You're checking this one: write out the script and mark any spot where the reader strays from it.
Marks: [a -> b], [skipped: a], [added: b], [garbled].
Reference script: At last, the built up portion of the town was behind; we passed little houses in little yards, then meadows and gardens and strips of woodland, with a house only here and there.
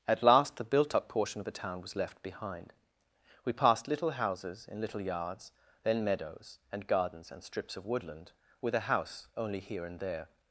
At last, the built up portion of the town was [added: left] behind; we passed little houses in little yards, then meadows and gardens and strips of woodland, with a house only here and there.